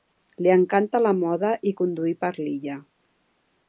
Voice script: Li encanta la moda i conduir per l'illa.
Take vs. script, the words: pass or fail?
pass